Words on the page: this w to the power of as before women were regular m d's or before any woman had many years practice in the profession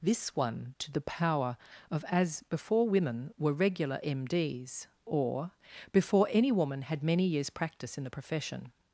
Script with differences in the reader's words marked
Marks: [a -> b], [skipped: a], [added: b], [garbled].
this [w -> one] to the power of as before women were regular m d's or before any woman had many years practice in the profession